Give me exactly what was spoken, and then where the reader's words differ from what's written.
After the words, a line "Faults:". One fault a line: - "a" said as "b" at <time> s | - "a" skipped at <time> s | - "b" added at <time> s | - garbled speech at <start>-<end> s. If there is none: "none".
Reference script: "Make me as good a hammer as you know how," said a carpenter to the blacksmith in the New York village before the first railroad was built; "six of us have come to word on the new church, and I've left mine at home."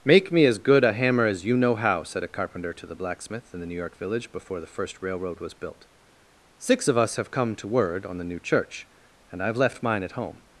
"Make me as good a hammer as you know how," said a carpenter to the blacksmith in the New York village before the first railroad was built; "six of us have come to word on the new church, and I've left mine at home."
Faults:
none